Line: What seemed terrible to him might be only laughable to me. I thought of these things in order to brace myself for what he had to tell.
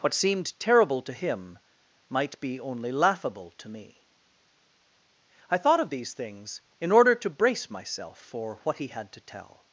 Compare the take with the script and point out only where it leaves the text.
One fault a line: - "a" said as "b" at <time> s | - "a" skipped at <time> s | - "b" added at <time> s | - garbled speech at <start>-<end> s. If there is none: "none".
none